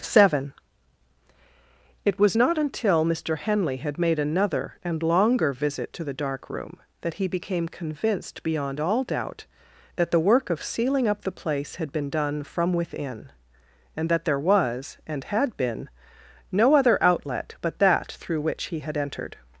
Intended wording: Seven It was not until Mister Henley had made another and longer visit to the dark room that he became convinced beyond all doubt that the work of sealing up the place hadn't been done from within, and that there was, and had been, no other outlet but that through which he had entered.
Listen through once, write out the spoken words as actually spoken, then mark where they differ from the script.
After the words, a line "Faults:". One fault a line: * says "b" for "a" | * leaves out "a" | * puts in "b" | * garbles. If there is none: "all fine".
Seven It was not until Mister Henley had made another and longer visit to the dark room that he became convinced beyond all doubt that the work of sealing up the place had been done from within, and that there was, and had been, no other outlet but that through which he had entered.
Faults:
* says "had" for "hadn't"